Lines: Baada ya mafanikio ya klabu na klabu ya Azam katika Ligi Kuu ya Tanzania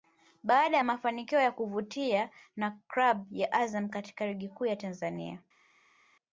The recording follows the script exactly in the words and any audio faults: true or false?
false